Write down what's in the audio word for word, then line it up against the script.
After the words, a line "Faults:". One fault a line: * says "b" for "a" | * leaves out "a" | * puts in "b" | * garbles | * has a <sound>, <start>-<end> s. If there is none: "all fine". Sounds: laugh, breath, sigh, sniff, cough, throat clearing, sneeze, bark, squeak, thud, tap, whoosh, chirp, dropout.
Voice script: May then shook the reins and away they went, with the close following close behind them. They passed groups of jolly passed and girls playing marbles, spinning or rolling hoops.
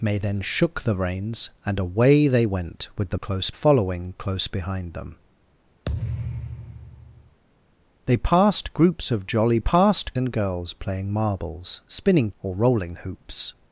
May then shook the reins and away they went, with the close following close behind them. They passed groups of jolly passed and girls playing marbles, spinning or rolling hoops.
Faults:
* has a thud, 5.8-7.4 s